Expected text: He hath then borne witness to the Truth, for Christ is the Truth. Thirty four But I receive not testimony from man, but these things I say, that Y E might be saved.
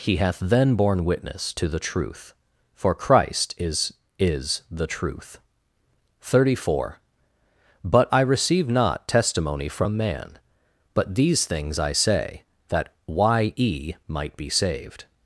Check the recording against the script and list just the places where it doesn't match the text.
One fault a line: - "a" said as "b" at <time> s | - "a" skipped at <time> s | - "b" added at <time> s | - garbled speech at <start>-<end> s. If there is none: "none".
- "is" added at 4.2 s